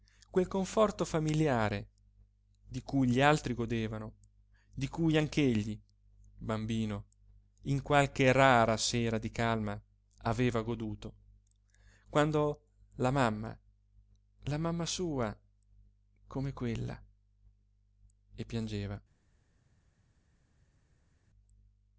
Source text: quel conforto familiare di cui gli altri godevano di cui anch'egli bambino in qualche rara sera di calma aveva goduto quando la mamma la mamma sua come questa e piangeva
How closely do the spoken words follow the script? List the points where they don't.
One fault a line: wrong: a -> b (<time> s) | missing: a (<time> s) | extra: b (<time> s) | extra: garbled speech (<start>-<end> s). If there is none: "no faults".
wrong: questa -> quella (16.5 s)